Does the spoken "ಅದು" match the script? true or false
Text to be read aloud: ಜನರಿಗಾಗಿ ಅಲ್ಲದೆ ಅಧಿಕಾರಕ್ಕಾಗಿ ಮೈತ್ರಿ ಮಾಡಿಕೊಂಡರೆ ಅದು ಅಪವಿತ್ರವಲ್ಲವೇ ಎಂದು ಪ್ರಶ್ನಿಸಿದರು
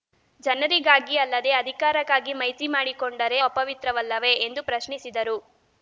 false